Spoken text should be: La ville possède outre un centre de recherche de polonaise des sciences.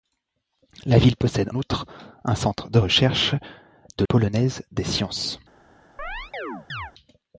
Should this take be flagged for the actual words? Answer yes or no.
no